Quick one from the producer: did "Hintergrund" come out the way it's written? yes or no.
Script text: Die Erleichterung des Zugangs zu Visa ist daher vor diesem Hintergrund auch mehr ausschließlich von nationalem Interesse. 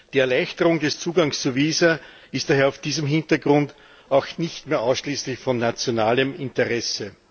yes